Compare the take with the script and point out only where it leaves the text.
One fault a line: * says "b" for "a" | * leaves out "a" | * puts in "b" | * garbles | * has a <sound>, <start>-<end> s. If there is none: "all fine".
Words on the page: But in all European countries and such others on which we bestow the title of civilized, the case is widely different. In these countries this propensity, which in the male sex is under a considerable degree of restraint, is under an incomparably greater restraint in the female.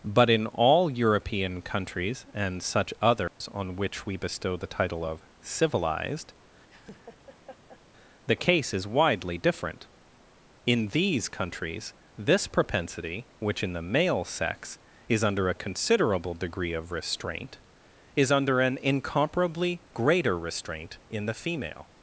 * has a dropout, 3.3-3.4 s
* has a laugh, 6.7-7.8 s